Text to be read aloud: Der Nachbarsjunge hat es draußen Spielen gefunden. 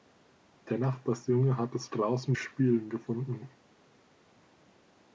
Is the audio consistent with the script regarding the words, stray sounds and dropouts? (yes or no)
yes